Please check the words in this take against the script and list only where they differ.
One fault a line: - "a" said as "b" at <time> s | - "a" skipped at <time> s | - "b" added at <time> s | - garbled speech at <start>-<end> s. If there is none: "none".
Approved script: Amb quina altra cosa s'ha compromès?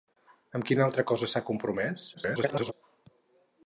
- garbled speech at 2.1-2.7 s